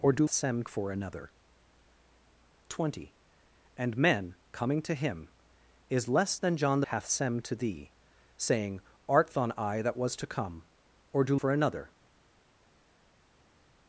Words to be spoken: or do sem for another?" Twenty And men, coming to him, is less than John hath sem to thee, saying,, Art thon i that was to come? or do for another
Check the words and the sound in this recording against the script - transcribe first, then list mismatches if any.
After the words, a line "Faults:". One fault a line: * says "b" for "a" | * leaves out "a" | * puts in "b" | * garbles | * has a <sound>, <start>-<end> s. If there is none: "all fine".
or do sem for another?" Twenty And men, coming to him, is less than John hath sem to thee, saying,, Art thon i that was to come? or do for another
Faults:
all fine